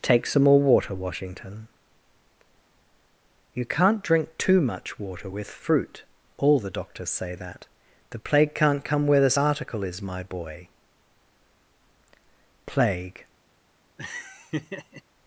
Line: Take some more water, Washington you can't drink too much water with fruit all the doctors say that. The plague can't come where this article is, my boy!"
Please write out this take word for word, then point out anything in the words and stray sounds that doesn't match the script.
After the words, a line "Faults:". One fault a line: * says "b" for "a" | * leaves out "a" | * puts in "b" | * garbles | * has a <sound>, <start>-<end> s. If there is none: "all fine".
Take some more water, Washington you can't drink too much water with fruit all the doctors say that. The plague can't come where this article is, my boy!" "Plague
Faults:
* puts in "Plague"
* has a laugh, 14.0-15.0 s